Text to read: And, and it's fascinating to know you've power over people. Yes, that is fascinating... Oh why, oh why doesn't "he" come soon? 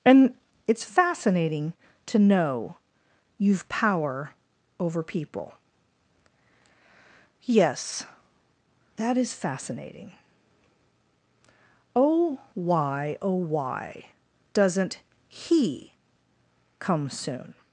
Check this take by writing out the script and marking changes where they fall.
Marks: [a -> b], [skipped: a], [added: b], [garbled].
And, [skipped: and] it's fascinating to know you've power over people. Yes, that is fascinating... Oh why, oh why doesn't "he" come soon?